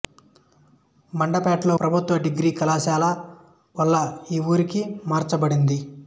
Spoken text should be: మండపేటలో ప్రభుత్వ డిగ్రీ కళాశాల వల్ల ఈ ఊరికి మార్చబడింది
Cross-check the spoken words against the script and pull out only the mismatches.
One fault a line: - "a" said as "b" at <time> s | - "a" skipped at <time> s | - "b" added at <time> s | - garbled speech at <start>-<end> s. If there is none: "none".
none